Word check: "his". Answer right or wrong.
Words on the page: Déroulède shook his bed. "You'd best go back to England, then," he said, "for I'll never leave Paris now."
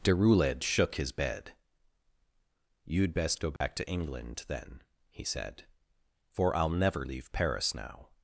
right